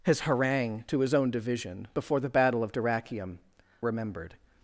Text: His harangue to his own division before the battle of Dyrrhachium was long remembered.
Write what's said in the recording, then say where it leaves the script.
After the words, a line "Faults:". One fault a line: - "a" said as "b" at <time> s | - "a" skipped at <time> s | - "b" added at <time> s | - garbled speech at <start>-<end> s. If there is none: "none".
His harangue to his own division before the battle of Dyrrhachium remembered.
Faults:
- "was long" skipped at 3.4 s